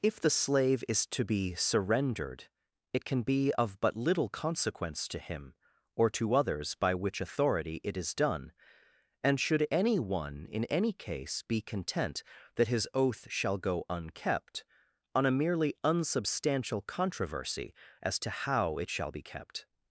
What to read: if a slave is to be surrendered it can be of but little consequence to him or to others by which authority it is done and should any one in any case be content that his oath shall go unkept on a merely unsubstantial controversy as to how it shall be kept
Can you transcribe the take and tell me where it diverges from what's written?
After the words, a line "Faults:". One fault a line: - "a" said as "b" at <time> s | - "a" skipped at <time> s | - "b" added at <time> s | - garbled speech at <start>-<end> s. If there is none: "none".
if the slave is to be surrendered it can be of but little consequence to him or to others by which authority it is done and should any one in any case be content that his oath shall go unkept on a merely unsubstantial controversy as to how it shall be kept
Faults:
- "a" said as "the" at 0.2 s